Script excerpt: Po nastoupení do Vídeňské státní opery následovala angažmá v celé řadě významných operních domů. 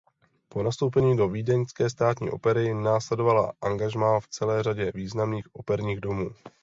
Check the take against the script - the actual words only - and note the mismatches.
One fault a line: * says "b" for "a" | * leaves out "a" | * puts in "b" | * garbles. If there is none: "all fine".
all fine